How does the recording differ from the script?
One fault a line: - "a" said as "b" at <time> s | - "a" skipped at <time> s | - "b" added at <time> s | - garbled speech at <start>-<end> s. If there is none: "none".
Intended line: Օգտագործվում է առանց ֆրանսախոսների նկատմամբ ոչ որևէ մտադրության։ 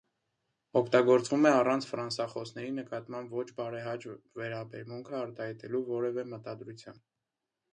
- "բարեհաճ վերաբերմունքը արտահայտելու" added at 3.6 s